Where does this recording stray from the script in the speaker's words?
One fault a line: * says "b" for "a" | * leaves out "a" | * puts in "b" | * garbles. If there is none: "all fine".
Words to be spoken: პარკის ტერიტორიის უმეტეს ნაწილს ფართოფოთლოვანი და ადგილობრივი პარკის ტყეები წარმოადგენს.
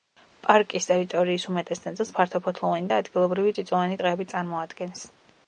* says "წიწვოვანი" for "პარკის"